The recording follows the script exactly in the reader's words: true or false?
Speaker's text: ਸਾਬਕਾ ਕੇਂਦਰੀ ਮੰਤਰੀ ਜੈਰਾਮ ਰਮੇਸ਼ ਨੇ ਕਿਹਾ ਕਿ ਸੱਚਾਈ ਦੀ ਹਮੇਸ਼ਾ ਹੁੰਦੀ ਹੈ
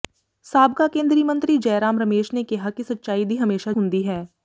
true